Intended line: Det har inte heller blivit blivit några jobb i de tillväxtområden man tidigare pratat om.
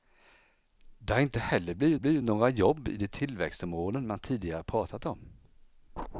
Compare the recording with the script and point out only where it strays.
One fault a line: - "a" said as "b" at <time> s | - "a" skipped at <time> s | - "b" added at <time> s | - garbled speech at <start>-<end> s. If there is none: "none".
none